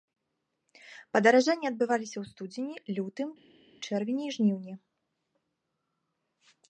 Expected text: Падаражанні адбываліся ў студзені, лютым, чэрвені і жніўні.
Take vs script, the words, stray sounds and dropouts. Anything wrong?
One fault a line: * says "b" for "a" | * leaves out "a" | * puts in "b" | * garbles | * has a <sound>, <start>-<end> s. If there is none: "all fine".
all fine